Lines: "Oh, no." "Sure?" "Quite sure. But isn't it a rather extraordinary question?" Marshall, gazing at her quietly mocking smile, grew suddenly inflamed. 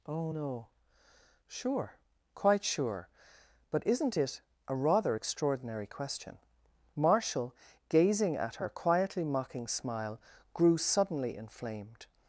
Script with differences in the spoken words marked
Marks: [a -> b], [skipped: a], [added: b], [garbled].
"Oh, no." "Sure?" "Quite sure. But isn't it a rather extraordinary question?" Marshall, gazing at her quietly mocking smile, grew suddenly inflamed.